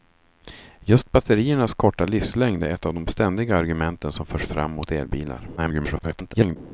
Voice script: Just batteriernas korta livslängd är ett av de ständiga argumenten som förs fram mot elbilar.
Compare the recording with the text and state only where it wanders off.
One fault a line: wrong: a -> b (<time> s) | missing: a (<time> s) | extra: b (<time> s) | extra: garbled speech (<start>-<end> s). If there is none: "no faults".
extra: garbled speech (5.6-6.6 s)